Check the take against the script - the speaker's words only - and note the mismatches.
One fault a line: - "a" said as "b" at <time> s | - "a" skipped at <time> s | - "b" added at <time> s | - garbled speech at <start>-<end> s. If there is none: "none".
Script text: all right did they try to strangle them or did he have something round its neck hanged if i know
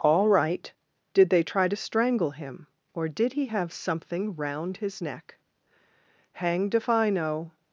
- "them" said as "him" at 2.3 s
- "its" said as "his" at 4.8 s